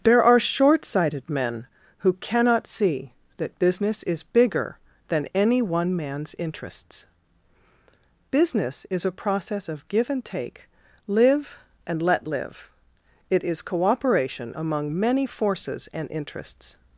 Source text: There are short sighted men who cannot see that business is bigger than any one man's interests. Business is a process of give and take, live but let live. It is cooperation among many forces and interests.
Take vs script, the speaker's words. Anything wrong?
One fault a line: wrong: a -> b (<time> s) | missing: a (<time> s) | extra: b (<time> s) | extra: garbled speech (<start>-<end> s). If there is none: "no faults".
wrong: but -> and (11.8 s)